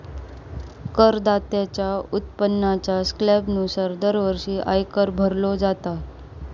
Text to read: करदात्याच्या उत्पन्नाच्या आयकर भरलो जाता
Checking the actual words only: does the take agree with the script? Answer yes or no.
no